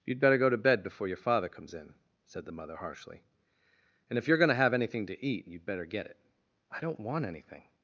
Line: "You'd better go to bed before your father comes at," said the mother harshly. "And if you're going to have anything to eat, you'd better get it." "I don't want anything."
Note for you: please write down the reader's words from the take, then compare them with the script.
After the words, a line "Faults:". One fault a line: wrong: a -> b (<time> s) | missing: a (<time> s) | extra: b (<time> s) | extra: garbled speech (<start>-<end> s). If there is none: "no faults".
"You'd better go to bed before your father comes in," said the mother harshly. "And if you're going to have anything to eat, you'd better get it." "I don't want anything."
Faults:
wrong: at -> in (1.7 s)